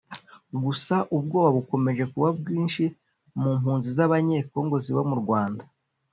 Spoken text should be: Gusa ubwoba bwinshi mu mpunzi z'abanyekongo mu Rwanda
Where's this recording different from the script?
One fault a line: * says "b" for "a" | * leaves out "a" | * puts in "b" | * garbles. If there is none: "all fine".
* puts in "bukomeje kuba"
* puts in "ziba"